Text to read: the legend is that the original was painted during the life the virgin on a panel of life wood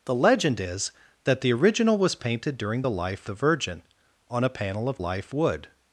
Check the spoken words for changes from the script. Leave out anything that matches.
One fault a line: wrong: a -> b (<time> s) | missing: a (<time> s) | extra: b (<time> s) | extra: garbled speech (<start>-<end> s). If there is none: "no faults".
no faults